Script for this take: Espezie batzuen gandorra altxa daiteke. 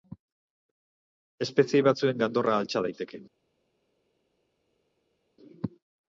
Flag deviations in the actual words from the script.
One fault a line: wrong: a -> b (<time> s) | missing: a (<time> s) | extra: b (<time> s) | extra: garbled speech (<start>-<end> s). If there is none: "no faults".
no faults